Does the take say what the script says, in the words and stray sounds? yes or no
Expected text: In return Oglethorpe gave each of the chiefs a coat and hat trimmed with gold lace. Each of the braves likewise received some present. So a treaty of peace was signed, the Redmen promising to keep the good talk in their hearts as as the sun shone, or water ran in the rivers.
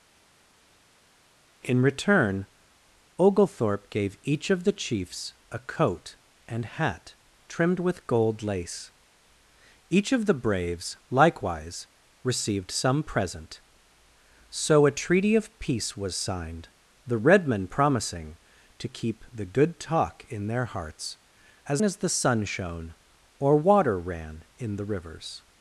yes